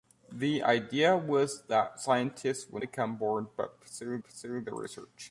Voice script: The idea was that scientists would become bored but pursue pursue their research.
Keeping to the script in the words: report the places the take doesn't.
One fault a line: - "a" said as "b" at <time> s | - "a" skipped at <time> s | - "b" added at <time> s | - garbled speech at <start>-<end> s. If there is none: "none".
none